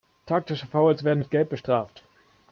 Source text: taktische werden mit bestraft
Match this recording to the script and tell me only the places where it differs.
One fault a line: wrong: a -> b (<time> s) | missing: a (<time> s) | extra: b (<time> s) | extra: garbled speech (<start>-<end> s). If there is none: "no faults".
extra: fouls (0.7 s)
extra: gelb (1.3 s)